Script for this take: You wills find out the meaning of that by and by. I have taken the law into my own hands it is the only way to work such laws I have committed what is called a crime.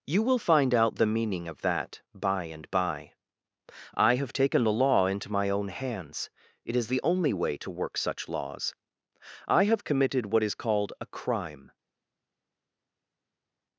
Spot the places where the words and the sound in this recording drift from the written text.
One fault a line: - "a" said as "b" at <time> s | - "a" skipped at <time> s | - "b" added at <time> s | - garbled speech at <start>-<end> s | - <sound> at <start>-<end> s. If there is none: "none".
- "wills" said as "will" at 0.2 s